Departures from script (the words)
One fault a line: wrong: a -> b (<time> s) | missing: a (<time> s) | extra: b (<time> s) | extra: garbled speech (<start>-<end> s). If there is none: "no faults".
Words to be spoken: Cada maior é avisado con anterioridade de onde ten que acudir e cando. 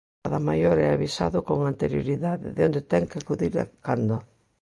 no faults